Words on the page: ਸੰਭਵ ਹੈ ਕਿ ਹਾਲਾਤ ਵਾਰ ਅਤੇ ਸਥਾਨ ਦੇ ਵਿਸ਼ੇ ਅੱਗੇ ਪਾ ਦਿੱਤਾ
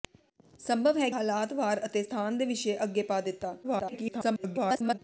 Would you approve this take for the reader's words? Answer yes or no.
no